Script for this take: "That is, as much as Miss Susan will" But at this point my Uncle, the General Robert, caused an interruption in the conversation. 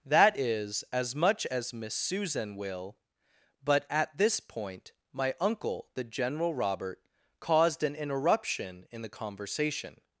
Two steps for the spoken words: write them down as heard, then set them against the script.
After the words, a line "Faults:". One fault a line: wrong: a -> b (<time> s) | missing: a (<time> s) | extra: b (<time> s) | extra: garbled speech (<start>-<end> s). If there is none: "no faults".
"That is, as much as Miss Susan will" But at this point my Uncle, the General Robert, caused an interruption in the conversation.
Faults:
no faults